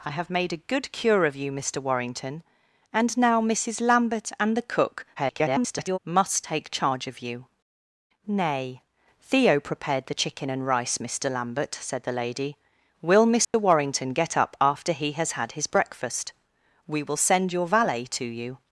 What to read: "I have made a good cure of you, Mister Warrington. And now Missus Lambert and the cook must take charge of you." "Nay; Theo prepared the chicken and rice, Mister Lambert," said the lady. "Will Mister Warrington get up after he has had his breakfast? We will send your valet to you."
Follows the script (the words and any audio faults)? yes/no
no